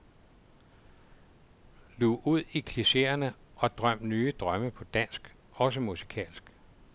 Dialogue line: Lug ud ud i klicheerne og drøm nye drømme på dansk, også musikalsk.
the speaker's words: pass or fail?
fail